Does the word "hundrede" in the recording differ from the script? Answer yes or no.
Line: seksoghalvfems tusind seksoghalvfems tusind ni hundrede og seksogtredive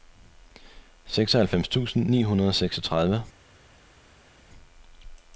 no